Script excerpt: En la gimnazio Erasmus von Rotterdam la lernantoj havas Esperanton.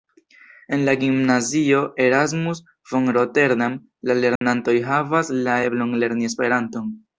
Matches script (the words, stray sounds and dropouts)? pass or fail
fail